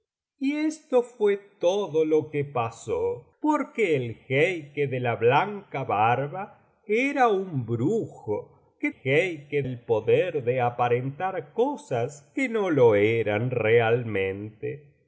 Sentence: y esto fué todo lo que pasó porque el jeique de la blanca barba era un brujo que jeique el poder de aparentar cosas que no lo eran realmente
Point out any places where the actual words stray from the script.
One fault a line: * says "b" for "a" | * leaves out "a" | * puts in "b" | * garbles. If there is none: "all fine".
all fine